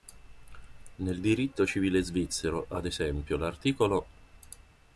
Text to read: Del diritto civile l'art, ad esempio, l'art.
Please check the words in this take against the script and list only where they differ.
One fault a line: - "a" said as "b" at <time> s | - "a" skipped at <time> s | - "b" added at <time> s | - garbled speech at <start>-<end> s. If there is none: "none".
- "Del" said as "Nel" at 0.9 s
- "l'art" said as "svizzero" at 2.0 s